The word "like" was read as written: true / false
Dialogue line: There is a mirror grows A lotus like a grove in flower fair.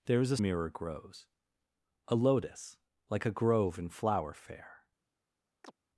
true